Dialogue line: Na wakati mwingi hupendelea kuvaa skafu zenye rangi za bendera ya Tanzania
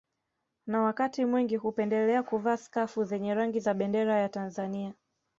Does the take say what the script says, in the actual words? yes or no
yes